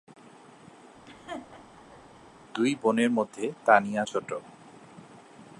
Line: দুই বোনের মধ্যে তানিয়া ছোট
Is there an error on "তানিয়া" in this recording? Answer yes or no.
no